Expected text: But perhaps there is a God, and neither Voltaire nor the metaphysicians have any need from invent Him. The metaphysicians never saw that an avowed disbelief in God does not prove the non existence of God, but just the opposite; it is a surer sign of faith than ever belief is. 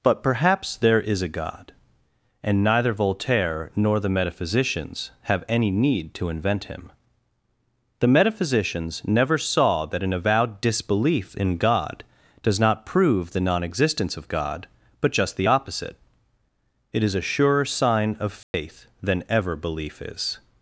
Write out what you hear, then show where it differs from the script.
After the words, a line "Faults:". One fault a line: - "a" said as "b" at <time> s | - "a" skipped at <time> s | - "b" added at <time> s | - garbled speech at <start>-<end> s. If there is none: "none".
But perhaps there is a God, and neither Voltaire nor the metaphysicians have any need to invent Him. The metaphysicians never saw that an avowed disbelief in God does not prove the non existence of God, but just the opposite; it is a surer sign of faith than ever belief is.
Faults:
- "from" said as "to" at 6.2 s